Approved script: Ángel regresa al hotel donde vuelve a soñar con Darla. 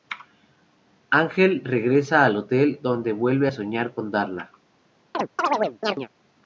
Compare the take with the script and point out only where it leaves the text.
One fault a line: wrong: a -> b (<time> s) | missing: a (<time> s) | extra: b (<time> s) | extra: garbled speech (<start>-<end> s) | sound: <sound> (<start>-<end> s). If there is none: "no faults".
sound: chirp (5.1-6.1 s)